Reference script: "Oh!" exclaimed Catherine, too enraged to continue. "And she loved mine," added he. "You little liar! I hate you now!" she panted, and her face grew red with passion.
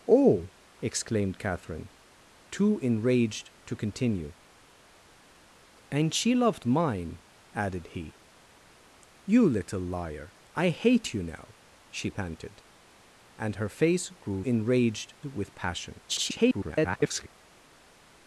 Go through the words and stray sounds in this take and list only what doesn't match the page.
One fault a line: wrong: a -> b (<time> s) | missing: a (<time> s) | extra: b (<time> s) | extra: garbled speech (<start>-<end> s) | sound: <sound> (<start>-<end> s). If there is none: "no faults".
wrong: red -> enraged (14.4 s)
extra: garbled speech (16.1-17.3 s)